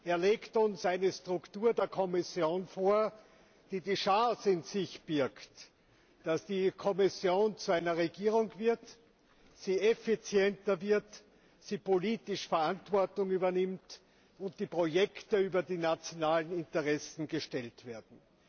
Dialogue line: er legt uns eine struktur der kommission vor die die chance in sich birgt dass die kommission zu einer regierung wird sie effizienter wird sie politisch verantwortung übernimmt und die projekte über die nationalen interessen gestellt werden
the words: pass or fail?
pass